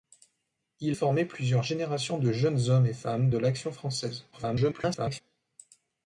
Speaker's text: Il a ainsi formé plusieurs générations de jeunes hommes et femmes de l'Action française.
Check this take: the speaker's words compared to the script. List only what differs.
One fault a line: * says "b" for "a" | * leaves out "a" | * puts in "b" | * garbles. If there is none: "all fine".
* leaves out "a ainsi"
* garbles